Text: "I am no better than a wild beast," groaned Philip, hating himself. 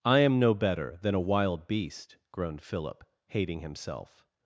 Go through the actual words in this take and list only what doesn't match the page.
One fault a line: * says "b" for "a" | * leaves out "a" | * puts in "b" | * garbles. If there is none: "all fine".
all fine